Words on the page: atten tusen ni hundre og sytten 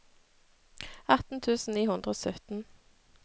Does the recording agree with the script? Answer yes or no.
yes